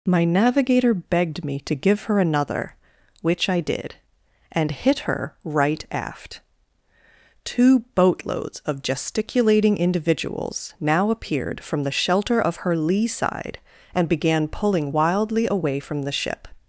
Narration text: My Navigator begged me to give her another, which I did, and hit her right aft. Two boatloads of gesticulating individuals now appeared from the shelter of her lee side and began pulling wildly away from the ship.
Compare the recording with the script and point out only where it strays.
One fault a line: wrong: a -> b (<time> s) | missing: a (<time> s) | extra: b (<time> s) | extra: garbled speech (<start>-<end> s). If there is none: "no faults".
no faults